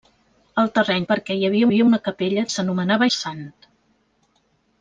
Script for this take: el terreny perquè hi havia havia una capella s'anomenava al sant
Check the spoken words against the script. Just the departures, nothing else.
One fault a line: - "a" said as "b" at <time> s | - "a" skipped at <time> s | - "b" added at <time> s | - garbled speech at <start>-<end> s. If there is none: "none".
none